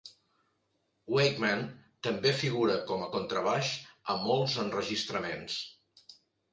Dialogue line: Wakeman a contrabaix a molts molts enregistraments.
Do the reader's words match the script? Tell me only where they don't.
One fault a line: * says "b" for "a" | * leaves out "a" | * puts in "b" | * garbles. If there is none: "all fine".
* puts in "també figura com"
* leaves out "molts"